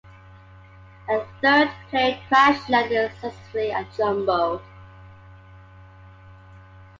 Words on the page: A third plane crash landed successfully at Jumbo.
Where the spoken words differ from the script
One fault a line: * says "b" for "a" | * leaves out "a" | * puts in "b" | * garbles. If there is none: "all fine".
all fine